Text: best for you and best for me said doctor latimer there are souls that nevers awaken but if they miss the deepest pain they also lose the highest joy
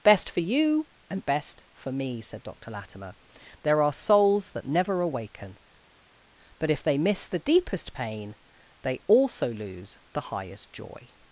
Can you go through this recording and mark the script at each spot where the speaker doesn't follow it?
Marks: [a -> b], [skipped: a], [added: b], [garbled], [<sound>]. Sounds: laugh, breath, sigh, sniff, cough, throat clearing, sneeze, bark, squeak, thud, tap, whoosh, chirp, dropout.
best for you and best for me said doctor latimer there are souls that [nevers -> never] awaken but if they miss the deepest pain they also lose the highest joy